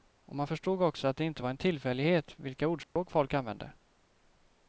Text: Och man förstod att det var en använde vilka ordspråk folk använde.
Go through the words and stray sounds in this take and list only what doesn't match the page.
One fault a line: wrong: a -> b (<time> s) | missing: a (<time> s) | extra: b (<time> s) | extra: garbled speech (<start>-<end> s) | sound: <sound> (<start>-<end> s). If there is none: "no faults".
extra: också (0.8 s)
extra: inte (1.2 s)
wrong: använde -> tillfällighet (1.6 s)
sound: dropout (2.8-3.0 s)